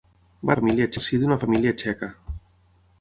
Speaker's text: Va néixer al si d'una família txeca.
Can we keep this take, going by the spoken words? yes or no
no